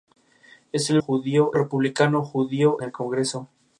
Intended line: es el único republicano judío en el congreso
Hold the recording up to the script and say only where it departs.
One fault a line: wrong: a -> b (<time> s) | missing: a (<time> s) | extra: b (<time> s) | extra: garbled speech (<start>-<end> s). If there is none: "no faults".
wrong: único -> judío (1.0 s)
missing: en (2.8 s)